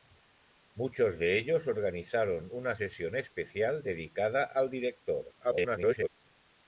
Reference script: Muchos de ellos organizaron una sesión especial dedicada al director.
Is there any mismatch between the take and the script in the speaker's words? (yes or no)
yes